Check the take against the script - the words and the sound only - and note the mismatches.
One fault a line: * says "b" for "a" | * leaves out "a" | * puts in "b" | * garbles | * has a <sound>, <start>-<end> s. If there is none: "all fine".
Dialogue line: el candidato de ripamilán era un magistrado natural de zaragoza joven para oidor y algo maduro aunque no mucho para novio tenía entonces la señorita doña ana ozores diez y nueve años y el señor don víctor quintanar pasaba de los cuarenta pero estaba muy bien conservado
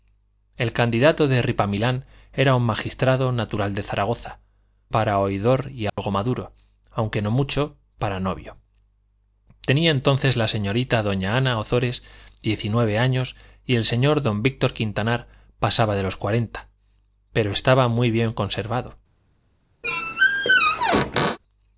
* leaves out "joven"
* has a dropout, 5.9-6.0 s
* has a squeak, 19.8-21.4 s